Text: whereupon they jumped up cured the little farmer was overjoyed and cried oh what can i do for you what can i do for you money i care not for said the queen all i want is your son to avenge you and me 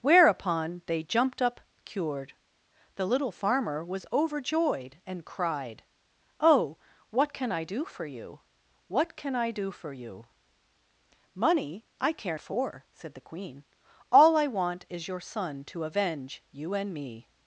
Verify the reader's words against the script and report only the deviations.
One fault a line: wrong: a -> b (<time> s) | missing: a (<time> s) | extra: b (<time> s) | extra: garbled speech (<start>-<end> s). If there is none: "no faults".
missing: not (12.4 s)